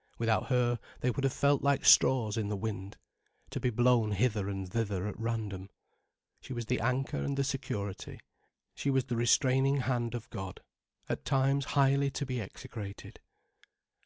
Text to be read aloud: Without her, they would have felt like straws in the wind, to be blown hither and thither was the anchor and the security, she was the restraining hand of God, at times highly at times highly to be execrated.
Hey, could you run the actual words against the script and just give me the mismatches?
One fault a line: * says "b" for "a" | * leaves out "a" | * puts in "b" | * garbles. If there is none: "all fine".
* puts in "at random She"
* leaves out "at times highly"